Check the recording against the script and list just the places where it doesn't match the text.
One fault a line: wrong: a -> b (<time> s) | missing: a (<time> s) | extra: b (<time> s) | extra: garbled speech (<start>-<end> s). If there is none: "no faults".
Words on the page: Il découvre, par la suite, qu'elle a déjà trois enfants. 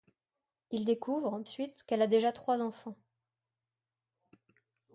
missing: par la (1.4 s)